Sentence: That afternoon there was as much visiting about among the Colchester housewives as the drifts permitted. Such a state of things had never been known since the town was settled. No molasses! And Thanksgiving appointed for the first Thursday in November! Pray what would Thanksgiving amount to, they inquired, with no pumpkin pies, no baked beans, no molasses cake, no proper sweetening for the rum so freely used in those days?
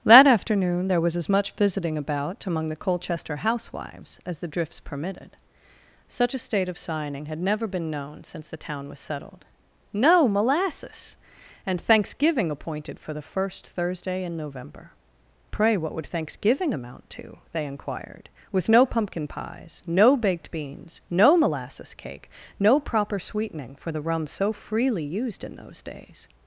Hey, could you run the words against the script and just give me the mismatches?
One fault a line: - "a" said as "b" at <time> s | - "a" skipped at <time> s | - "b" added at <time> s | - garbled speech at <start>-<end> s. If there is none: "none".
- "things" said as "signing" at 6.8 s